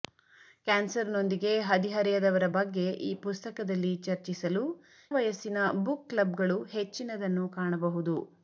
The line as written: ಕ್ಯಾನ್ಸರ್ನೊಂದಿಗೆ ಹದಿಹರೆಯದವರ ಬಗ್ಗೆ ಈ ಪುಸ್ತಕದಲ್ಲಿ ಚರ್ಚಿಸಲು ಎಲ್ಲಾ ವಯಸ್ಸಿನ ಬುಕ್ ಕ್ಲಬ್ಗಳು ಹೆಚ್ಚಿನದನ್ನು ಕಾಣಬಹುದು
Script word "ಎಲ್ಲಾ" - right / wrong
wrong